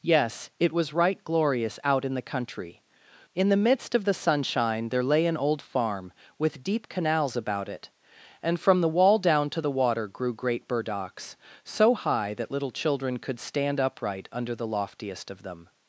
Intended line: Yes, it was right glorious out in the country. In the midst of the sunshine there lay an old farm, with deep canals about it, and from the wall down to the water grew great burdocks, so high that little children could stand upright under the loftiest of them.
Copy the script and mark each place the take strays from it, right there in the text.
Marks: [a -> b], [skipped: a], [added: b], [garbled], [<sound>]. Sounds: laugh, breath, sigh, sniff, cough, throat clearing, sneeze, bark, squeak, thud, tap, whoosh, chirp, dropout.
Yes, it was right glorious out in the country. In the midst of the sunshine there lay an old farm, with deep canals about it, and from the wall down to the water grew great burdocks, so high that little children could stand upright under the loftiest of them.